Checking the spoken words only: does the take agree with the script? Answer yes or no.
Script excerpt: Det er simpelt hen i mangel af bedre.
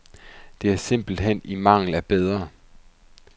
yes